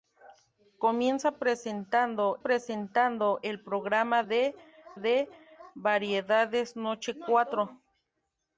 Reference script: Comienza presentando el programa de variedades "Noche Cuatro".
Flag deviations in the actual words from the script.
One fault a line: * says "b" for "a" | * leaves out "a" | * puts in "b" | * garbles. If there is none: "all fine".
* puts in "presentando"
* puts in "de"